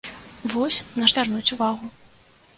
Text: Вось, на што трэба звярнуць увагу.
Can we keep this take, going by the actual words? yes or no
no